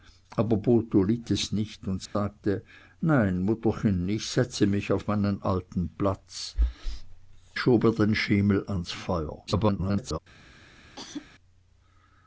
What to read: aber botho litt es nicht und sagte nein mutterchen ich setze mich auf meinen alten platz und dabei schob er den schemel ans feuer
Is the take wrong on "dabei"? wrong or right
wrong